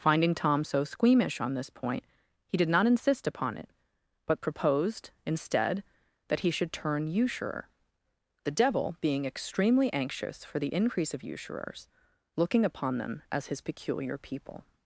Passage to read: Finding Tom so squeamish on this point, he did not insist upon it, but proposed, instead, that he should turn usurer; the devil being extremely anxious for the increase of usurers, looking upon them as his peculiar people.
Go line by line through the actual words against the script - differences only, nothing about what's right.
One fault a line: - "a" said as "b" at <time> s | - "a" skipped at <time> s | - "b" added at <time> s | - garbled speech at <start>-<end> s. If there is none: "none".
none